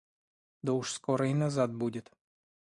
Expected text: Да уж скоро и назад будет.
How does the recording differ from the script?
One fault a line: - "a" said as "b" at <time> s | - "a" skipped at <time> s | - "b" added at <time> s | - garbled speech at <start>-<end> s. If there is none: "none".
none